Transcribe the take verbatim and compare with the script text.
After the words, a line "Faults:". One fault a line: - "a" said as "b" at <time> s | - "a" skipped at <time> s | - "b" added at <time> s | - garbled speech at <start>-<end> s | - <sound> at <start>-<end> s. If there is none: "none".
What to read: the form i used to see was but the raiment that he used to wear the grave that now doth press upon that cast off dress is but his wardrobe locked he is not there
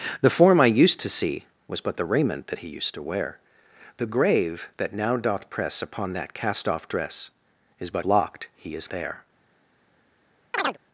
the form i used to see was but the raiment that he used to wear the grave that now doth press upon that cast off dress is but locked he is there
Faults:
- "his wardrobe" skipped at 8.1 s
- "not" skipped at 8.9 s
- chirp at 10.5-10.8 s